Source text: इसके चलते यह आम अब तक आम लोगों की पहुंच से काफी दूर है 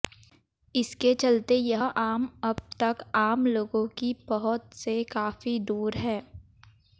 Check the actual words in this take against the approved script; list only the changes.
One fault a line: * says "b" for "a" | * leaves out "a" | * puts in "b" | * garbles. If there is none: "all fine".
all fine